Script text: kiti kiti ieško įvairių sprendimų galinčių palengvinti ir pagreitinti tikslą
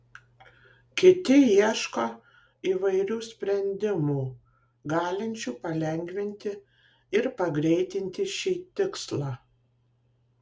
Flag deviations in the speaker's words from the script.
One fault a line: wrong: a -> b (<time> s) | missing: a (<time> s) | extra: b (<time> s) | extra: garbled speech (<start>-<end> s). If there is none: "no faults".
missing: kiti (1.4 s)
extra: šį (8.4 s)